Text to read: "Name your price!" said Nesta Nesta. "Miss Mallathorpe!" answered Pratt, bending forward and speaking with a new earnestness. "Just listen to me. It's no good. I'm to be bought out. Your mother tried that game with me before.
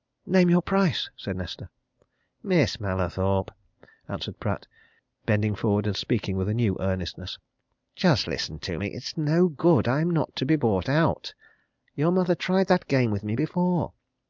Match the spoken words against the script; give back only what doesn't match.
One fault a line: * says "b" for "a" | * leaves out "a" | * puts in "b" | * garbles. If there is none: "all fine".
* leaves out "Nesta"
* puts in "not"